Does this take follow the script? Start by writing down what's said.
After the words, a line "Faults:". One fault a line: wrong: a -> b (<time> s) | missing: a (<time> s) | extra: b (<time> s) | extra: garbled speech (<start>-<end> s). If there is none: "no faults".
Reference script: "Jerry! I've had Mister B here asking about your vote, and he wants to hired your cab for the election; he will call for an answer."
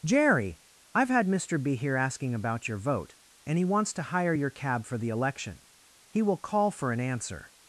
"Jerry! I've had Mister B here asking about your vote, and he wants to hire your cab for the election; he will call for an answer."
Faults:
wrong: hired -> hire (4.0 s)